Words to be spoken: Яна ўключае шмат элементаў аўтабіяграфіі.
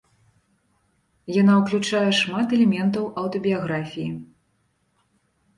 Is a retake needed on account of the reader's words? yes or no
no